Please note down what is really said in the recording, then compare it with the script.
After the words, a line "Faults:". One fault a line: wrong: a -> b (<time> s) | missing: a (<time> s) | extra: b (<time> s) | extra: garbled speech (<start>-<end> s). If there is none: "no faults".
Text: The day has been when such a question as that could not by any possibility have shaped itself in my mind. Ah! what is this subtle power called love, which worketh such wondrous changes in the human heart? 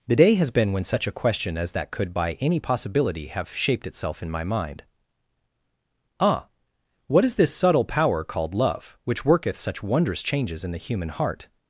The day has been when such a question as that could by any possibility have shaped itself in my mind. Ah! what is this subtle power called love, which worketh such wondrous changes in the human heart?
Faults:
missing: not (2.1 s)